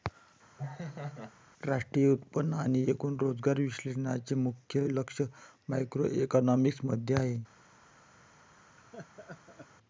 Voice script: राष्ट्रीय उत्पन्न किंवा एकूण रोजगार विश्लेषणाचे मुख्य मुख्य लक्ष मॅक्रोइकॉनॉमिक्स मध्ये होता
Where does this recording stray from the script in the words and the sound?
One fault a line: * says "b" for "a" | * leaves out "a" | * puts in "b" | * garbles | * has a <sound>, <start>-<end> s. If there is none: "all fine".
* has a laugh, 0.6-1.3 s
* says "आणि" for "किंवा"
* leaves out "मुख्य"
* says "आहे" for "होता"
* has a laugh, 8.8-9.7 s